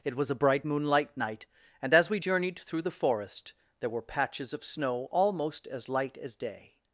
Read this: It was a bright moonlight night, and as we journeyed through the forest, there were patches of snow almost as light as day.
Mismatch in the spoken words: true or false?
false